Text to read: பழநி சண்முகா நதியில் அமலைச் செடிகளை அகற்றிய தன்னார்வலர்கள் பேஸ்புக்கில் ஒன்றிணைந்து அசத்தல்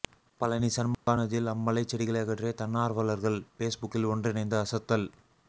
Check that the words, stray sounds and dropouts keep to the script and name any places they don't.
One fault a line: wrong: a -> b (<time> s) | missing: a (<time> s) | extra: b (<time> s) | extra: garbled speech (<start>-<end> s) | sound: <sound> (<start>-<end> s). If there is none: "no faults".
sound: dropout (0.9-1.1 s)